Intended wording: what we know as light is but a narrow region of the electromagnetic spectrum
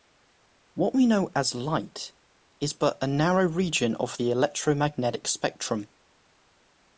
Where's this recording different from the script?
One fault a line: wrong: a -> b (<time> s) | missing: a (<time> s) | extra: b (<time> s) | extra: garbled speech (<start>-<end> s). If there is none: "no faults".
no faults